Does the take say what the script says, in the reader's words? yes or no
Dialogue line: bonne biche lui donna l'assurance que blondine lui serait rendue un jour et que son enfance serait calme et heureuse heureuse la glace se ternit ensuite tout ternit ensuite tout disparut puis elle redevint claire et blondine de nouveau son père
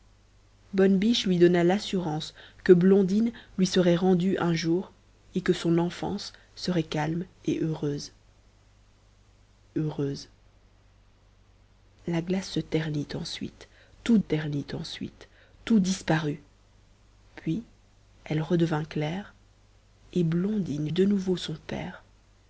yes